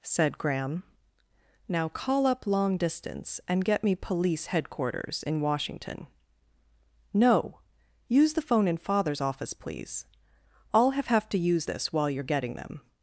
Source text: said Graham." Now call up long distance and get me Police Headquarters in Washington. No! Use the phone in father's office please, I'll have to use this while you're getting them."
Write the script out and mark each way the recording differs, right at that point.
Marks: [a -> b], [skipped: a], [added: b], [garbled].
said Graham." Now call up long distance and get me Police Headquarters in Washington. No! Use the phone in father's office please, I'll have [added: have] to use this while you're getting them."